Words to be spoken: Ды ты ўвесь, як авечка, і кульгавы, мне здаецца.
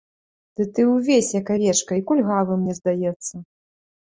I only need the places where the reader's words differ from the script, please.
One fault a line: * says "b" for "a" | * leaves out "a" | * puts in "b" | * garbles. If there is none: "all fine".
all fine